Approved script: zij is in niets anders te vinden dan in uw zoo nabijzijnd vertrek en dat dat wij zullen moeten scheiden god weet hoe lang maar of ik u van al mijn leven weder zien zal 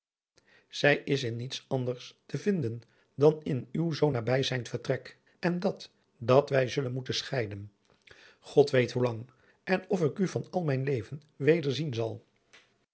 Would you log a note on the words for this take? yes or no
yes